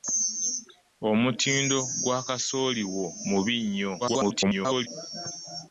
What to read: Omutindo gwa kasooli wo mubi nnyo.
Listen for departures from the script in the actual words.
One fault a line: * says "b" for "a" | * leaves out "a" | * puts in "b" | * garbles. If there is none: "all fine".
* garbles